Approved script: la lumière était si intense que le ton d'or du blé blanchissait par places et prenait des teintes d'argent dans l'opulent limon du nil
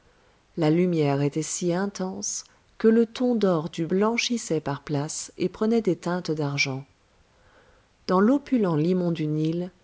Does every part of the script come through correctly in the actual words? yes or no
no